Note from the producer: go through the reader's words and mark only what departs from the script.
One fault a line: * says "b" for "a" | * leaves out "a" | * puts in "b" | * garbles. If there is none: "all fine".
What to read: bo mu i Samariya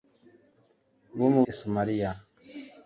all fine